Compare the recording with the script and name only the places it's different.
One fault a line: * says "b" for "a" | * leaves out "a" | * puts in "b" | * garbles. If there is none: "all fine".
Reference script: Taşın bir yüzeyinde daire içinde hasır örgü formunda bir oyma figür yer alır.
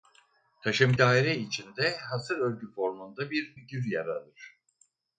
* leaves out "bir yüzeyinde"
* leaves out "oyma"